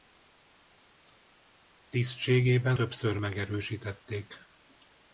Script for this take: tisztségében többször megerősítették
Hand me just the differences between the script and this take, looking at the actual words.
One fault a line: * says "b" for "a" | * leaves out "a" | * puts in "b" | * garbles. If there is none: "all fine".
all fine